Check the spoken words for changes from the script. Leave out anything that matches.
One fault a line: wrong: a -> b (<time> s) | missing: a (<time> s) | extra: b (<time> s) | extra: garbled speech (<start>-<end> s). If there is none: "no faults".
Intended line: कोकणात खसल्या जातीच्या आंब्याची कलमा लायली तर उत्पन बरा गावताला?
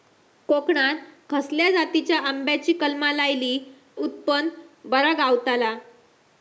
missing: तर (3.6 s)